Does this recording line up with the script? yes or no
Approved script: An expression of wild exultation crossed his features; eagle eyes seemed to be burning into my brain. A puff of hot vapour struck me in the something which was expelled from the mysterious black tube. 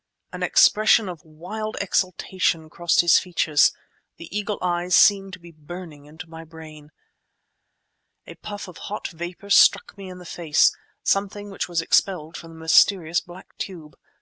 no